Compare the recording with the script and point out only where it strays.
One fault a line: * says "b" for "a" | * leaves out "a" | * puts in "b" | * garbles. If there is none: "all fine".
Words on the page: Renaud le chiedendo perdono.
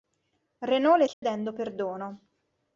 all fine